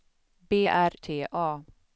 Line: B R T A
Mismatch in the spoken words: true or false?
false